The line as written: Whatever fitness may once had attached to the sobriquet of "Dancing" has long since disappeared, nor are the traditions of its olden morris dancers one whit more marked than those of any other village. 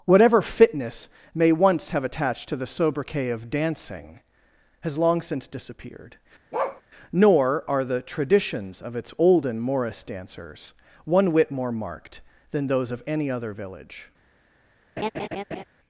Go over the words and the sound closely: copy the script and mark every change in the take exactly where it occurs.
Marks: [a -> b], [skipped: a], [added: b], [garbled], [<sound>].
Whatever fitness may once [had -> have] attached to the sobriquet of "Dancing" has long since disappeared, [bark] nor are the traditions of its olden morris dancers one whit more marked than those of any other village. [laugh]